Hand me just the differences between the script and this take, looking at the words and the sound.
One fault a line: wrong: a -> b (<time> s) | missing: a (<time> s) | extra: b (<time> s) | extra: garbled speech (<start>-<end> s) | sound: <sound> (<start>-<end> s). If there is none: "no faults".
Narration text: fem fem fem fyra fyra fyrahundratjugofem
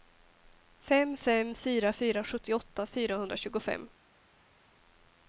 wrong: fem -> fyra (1.6 s)
wrong: fyra -> sjuttioåtta (2.2 s)